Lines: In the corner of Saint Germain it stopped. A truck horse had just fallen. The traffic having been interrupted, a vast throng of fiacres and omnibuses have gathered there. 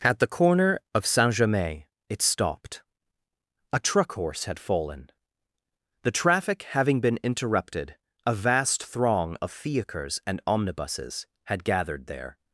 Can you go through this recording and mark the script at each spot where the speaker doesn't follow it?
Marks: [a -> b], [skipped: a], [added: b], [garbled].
[In -> At] the corner of Saint Germain it stopped. A truck horse had [skipped: just] fallen. The traffic having been interrupted, a vast throng of fiacres and omnibuses [have -> had] gathered there.